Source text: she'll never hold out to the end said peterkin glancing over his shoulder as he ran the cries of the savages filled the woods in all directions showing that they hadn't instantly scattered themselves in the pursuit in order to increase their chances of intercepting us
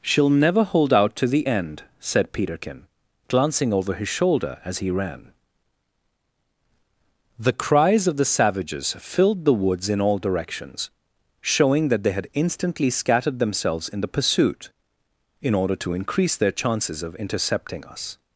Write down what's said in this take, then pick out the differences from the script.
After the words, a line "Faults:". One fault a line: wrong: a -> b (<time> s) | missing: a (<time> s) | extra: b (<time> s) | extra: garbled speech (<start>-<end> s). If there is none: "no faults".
she'll never hold out to the end said peterkin glancing over his shoulder as he ran the cries of the savages filled the woods in all directions showing that they had instantly scattered themselves in the pursuit in order to increase their chances of intercepting us
Faults:
wrong: hadn't -> had (12.1 s)